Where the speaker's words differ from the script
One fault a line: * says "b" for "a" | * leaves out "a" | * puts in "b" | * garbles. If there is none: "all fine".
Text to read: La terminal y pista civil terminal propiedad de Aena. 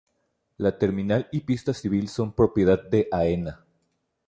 * says "son" for "terminal"